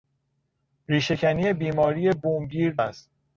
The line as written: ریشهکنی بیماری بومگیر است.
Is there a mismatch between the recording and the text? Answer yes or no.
no